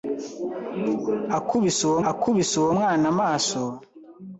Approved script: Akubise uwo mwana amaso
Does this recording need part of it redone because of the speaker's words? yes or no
yes